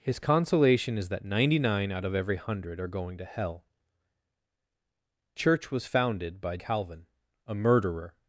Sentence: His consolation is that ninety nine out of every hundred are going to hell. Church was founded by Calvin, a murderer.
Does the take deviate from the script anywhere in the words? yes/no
no